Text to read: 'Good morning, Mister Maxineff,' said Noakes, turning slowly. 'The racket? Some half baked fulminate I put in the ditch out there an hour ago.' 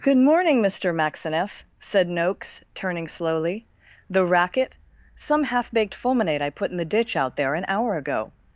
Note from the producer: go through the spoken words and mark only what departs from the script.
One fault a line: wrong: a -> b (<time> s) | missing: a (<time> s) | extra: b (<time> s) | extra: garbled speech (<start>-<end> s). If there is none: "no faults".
no faults